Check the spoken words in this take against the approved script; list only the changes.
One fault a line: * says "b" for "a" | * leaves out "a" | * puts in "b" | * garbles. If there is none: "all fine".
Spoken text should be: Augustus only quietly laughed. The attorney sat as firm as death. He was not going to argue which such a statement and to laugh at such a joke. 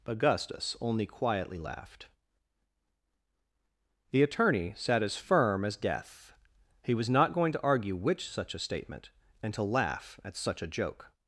all fine